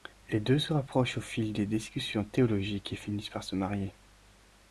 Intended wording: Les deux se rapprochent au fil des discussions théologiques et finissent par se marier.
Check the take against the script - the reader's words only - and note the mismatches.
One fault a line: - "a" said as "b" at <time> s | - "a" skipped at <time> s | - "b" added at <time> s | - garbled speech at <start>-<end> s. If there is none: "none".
none